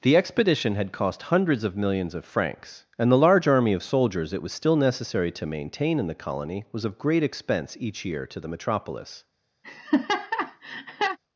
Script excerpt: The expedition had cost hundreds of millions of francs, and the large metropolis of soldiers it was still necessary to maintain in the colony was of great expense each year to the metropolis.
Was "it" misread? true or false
false